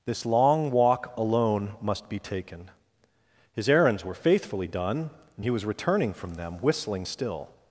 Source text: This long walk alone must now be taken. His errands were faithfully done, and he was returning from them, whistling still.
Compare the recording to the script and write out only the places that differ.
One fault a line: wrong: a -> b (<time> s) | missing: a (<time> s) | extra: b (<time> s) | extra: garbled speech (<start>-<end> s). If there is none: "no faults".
missing: now (2.1 s)